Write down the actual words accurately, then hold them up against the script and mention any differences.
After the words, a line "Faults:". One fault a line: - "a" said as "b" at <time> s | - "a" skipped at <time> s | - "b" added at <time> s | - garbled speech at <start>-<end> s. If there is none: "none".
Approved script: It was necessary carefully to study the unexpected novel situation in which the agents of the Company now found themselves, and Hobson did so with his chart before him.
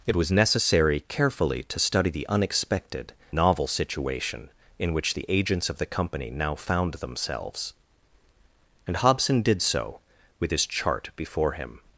It was necessary carefully to study the unexpected novel situation in which the agents of the Company now found themselves, and Hobson did so with his chart before him.
Faults:
none